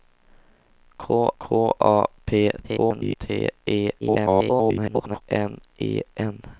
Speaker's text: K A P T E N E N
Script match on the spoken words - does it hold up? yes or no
no